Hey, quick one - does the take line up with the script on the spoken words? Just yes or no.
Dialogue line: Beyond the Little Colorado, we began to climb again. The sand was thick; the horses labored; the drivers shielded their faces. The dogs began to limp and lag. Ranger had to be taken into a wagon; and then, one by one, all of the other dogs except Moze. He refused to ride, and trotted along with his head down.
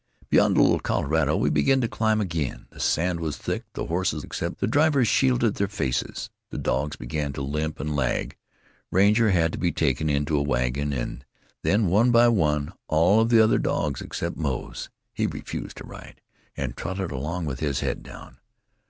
no